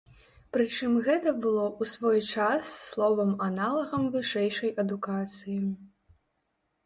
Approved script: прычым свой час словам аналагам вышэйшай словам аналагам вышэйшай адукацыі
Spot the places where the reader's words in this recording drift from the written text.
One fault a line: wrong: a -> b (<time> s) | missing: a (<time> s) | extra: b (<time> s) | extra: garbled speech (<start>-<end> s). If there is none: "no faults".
wrong: свой час словам аналагам вышэйшай -> гэта было ў свой час (1.1 s)